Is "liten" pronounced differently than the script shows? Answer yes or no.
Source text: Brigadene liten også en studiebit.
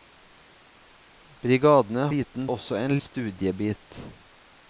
no